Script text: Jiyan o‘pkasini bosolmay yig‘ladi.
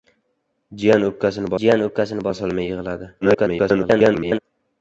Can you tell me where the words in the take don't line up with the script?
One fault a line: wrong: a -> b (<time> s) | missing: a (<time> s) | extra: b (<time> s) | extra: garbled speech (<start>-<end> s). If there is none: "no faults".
extra: jiyan o‘pkasini (1.6 s)
extra: garbled speech (3.2-4.4 s)